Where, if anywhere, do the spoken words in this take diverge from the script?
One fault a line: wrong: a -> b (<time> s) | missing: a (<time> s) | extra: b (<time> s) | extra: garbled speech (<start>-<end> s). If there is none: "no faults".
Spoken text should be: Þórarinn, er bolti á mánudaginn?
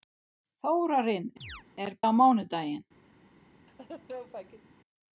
missing: bolti (1.9 s)